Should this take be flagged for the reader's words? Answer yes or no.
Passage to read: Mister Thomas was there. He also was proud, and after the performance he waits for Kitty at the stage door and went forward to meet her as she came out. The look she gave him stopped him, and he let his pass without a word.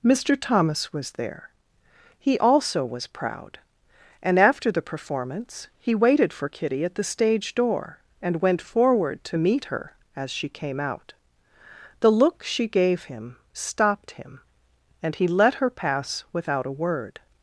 yes